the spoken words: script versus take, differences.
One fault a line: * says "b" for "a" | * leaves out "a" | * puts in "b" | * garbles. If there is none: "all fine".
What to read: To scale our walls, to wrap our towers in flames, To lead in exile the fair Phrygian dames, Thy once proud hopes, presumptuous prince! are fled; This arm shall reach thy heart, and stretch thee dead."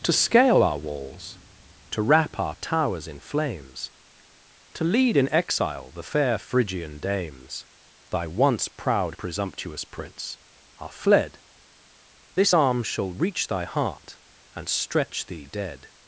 * leaves out "hopes"